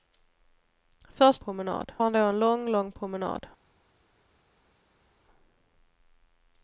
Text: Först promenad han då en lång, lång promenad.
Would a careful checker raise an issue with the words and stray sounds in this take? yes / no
no